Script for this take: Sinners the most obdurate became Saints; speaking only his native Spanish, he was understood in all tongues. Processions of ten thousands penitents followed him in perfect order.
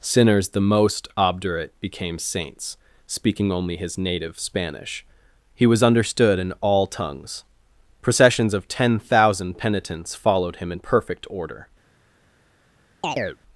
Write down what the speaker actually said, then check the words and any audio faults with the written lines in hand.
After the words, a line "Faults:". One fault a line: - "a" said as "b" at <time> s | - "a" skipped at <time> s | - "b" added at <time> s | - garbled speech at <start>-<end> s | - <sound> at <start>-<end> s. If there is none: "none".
Sinners the most obdurate became Saints; speaking only his native Spanish, he was understood in all tongues. Processions of ten thousand penitents followed him in perfect order.
Faults:
- "thousands" said as "thousand" at 9.0 s
- chirp at 13.0-13.4 s